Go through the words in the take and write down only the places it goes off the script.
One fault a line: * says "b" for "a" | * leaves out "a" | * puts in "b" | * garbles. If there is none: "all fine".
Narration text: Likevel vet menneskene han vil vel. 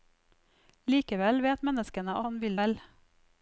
all fine